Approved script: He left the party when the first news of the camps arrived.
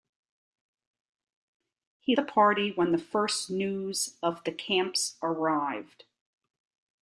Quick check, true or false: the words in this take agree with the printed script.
false